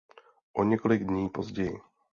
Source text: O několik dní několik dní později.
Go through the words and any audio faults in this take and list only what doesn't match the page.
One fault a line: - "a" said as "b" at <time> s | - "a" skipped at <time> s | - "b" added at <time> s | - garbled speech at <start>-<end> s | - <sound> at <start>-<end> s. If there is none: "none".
- "několik dní" skipped at 1.3 s